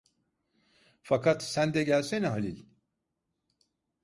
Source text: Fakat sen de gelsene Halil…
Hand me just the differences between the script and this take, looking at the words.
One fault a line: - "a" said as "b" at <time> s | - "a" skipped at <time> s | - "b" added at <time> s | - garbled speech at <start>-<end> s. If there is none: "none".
none